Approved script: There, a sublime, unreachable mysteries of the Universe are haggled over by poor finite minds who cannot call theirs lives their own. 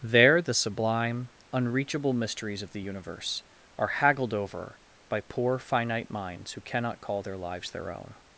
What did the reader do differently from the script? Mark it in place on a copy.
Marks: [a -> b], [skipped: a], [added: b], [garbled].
There, [a -> the] sublime, unreachable mysteries of the Universe are haggled over by poor finite minds who cannot call [theirs -> their] lives their own.